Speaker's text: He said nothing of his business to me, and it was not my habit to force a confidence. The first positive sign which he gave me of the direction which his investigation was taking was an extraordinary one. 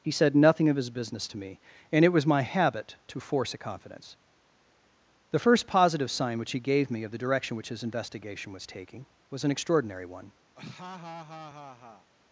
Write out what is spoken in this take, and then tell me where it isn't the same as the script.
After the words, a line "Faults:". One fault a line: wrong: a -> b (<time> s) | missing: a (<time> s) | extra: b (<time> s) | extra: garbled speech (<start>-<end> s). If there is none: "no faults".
He said nothing of his business to me, and it was my habit to force a confidence. The first positive sign which he gave me of the direction which his investigation was taking was an extraordinary one.
Faults:
missing: not (2.2 s)